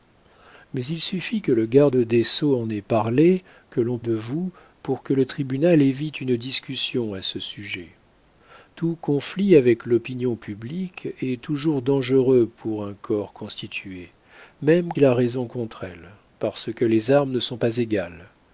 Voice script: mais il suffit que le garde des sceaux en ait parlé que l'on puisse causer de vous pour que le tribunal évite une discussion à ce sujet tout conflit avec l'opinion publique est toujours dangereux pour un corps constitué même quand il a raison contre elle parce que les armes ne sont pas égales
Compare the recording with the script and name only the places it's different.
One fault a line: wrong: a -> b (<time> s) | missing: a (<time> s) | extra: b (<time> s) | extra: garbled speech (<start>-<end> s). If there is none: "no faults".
missing: puisse causer (4.0 s)
missing: quand (14.9 s)